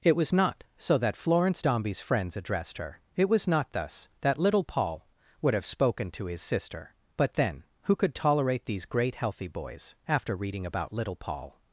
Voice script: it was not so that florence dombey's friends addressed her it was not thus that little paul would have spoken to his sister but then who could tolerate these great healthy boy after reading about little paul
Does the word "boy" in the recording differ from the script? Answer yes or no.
yes